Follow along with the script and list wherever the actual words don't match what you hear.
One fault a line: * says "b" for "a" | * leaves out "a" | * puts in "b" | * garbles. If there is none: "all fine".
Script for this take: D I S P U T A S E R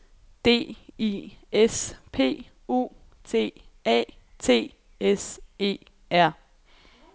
* puts in "T"